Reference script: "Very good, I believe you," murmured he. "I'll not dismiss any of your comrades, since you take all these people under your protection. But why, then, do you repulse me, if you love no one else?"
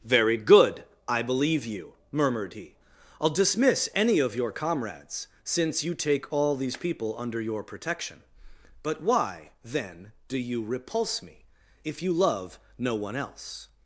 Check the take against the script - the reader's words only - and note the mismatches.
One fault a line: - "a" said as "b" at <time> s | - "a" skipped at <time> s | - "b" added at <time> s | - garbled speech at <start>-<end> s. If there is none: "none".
- "not" skipped at 3.3 s